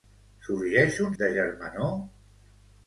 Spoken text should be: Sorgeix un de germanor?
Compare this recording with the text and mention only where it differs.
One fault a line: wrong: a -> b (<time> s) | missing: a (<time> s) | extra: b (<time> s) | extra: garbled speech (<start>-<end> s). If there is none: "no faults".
no faults